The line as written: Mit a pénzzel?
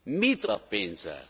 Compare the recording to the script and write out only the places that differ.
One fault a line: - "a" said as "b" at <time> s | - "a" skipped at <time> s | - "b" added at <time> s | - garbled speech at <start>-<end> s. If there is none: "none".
none